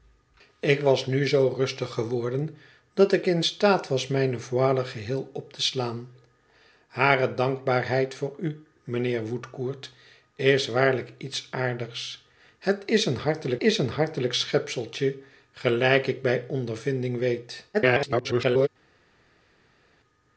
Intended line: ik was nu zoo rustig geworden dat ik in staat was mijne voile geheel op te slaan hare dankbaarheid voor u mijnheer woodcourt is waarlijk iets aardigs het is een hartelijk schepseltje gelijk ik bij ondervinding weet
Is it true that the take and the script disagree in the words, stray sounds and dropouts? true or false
true